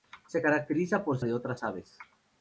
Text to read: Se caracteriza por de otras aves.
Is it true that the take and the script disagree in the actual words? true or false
false